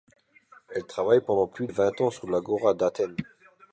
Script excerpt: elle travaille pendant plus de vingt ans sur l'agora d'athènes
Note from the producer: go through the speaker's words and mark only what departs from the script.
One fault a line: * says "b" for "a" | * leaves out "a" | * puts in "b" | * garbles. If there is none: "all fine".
* leaves out "de"